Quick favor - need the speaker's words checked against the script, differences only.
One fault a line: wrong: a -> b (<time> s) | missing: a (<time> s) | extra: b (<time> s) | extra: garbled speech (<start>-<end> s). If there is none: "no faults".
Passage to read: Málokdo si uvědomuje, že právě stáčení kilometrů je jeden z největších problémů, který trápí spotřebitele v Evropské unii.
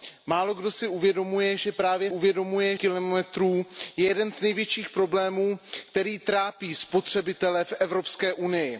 wrong: stáčení -> uvědomuje (2.1 s)